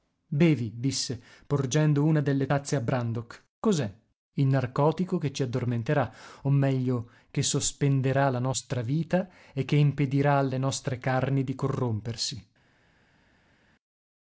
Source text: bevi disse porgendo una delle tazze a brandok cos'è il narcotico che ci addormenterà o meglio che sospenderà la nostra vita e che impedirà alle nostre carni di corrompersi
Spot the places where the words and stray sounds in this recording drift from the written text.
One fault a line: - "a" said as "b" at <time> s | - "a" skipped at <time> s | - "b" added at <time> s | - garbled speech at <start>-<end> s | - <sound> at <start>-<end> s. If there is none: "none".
none